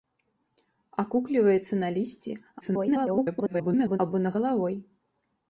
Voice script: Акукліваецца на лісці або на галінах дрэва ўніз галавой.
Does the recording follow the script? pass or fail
fail